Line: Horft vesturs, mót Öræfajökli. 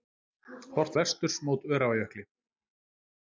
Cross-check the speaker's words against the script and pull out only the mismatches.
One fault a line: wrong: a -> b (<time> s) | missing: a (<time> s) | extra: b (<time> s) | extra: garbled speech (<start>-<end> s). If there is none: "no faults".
no faults